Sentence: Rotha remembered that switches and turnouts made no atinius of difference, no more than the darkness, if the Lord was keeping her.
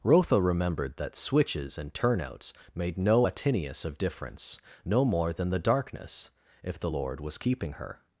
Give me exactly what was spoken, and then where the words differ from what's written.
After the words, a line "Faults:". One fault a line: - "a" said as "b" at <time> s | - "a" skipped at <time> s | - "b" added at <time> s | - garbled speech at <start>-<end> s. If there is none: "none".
Rotha remembered that switches and turnouts made no atinius of difference, no more than the darkness, if the Lord was keeping her.
Faults:
none